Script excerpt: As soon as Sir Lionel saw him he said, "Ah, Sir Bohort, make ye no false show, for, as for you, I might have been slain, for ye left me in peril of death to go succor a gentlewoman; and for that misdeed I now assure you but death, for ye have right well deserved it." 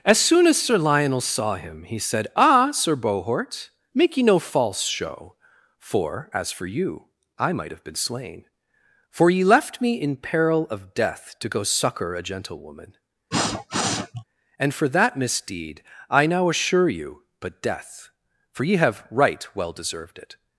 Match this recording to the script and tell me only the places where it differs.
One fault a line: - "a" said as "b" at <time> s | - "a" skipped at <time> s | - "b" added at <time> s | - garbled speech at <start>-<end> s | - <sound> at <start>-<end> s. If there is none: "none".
- sniff at 13.3-14.2 s